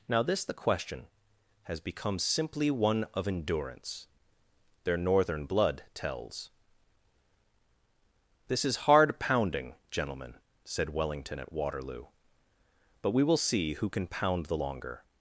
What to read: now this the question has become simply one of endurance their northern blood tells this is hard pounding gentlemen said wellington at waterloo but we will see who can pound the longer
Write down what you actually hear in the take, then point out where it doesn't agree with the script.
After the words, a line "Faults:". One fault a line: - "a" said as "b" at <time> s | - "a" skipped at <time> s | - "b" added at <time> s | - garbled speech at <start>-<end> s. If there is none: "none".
now this the question has become simply one of endurance their northern blood tells this is hard pounding gentlemen said wellington at waterloo but we will see who can pound the longer
Faults:
none